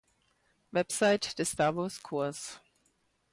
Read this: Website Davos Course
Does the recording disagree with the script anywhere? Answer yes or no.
yes